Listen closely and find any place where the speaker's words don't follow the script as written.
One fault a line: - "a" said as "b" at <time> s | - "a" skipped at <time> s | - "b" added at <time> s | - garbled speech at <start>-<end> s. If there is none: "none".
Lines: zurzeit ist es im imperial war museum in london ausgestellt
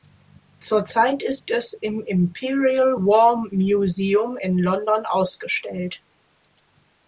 none